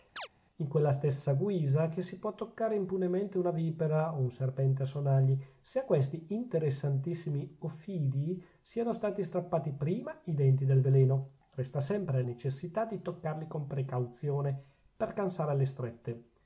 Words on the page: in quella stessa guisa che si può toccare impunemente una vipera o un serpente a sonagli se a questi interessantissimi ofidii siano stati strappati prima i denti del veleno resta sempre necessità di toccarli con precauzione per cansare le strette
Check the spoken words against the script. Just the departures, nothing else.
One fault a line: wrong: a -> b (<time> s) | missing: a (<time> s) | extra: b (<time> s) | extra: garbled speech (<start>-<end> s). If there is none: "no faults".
no faults